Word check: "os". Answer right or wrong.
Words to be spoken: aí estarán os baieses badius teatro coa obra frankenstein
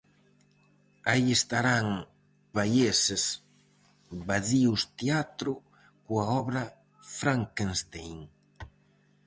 wrong